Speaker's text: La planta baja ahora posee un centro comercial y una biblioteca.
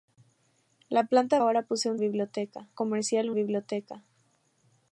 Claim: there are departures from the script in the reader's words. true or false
true